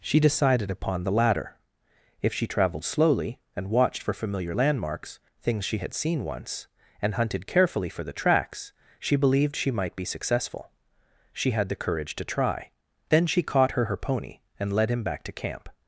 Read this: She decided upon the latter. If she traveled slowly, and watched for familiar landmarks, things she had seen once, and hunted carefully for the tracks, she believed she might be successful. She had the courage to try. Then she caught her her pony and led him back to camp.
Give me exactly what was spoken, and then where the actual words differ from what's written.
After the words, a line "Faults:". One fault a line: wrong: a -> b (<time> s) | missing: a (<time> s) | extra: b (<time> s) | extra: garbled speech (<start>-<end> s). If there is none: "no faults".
She decided upon the latter. If she traveled slowly, and watched for familiar landmarks, things she had seen once, and hunted carefully for the tracks, she believed she might be successful. She had the courage to try. Then she caught her her pony and led him back to camp.
Faults:
no faults